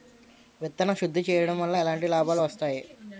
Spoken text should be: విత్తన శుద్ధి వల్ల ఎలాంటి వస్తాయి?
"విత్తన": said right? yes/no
yes